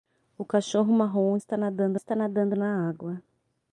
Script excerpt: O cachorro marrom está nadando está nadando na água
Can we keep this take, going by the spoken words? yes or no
yes